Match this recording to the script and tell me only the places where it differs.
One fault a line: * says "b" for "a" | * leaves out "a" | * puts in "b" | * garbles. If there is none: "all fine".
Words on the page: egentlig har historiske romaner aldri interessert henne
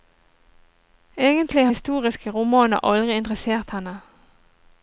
* leaves out "har"